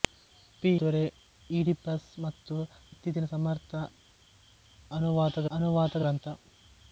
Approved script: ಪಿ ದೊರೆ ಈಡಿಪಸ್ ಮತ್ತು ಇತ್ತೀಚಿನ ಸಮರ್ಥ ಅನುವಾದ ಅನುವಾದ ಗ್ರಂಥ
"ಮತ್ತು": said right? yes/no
yes